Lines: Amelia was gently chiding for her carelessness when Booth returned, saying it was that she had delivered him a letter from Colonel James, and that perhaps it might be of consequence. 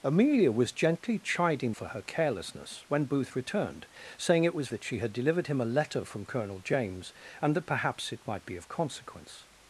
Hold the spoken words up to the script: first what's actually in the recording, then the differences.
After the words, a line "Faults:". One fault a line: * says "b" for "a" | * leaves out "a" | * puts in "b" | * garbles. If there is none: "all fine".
Amelia was gently chiding for her carelessness when Booth returned, saying it was that she had delivered him a letter from Colonel James, and that perhaps it might be of consequence.
Faults:
all fine